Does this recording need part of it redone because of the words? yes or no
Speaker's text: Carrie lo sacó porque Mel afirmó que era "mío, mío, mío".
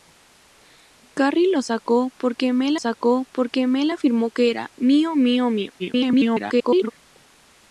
yes